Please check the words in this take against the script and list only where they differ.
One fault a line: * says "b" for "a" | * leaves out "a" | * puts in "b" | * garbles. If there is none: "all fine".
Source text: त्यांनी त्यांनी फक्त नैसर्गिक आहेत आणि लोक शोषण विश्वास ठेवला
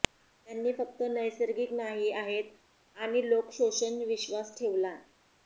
* leaves out "त्यांनी"
* puts in "नाही"